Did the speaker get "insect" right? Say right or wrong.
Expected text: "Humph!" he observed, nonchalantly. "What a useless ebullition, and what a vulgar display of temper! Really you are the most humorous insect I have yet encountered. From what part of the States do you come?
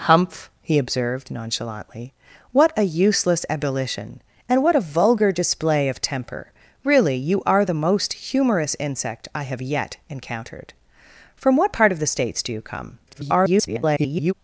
right